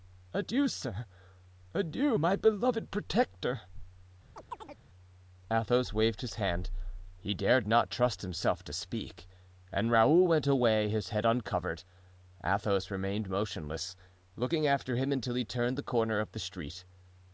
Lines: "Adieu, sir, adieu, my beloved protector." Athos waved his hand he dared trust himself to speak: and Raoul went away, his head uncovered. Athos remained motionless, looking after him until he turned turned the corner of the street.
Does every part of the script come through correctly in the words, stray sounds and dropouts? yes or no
no